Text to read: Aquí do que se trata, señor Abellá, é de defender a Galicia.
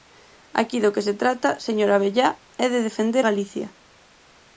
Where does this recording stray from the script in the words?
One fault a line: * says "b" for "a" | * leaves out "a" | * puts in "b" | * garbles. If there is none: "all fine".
* leaves out "a"